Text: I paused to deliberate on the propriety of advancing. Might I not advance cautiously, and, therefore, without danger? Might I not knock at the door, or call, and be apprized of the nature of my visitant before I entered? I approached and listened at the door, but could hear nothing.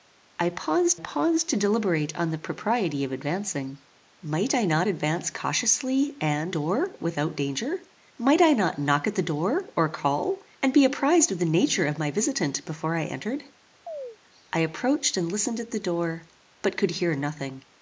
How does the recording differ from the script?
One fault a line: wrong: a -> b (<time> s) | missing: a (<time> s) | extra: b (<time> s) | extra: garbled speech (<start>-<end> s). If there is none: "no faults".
extra: paused (1.0 s)
wrong: therefore -> door (6.5 s)